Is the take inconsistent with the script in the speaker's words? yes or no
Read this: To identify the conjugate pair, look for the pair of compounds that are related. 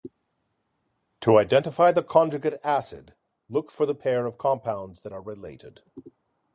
yes